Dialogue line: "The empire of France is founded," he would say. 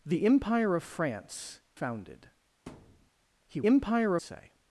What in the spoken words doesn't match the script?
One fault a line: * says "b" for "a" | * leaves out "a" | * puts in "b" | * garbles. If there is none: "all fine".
* leaves out "is"
* says "empire" for "would"